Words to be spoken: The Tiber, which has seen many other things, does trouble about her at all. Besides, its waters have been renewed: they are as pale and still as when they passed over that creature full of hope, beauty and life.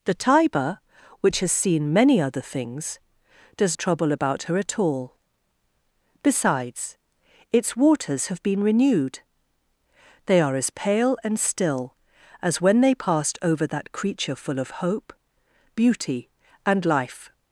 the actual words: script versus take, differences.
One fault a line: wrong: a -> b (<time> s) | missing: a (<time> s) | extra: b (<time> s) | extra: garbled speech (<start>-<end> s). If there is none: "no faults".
no faults